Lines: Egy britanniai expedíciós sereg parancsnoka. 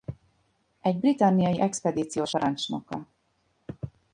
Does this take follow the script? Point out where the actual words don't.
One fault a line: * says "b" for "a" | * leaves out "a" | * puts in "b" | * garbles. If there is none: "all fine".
* leaves out "sereg"